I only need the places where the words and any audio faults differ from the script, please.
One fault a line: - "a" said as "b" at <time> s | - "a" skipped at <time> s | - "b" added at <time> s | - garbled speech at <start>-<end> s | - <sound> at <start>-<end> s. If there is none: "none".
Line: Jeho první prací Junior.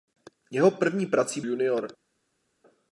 none